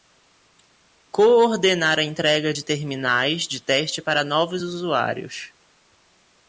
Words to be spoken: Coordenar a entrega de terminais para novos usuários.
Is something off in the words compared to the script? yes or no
yes